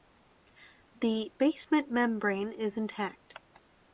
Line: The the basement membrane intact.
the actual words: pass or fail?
fail